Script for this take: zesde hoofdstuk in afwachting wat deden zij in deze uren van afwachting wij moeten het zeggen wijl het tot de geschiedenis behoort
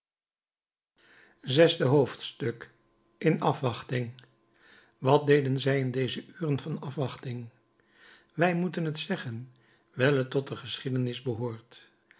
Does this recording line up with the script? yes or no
yes